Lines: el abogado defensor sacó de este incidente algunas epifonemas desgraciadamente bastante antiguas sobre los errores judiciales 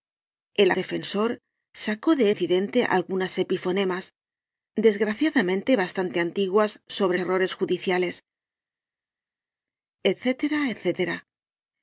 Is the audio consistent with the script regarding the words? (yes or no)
no